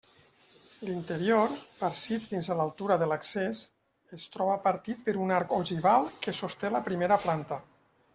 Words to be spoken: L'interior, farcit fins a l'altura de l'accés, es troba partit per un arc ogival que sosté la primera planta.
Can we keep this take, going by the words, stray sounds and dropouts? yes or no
yes